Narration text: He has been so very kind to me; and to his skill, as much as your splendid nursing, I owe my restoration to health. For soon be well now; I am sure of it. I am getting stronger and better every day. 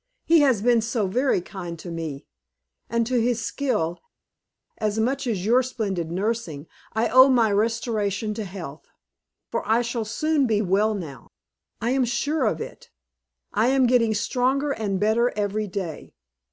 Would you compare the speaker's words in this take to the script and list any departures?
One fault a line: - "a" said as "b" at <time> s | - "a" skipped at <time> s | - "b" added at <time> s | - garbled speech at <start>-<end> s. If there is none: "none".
- "I shall" added at 9.7 s